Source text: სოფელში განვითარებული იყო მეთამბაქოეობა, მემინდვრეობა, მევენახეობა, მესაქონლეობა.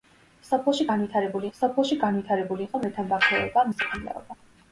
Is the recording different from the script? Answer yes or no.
yes